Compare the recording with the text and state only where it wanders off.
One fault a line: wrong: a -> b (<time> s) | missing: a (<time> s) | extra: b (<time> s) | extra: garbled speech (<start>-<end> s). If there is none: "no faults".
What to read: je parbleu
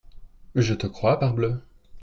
extra: te crois (0.7 s)